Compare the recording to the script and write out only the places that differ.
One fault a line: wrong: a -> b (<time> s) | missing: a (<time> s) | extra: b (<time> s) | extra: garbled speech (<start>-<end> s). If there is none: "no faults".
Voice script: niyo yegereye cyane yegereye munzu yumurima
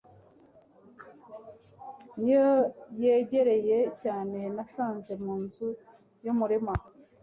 wrong: yegereye -> nasanze (4.5 s)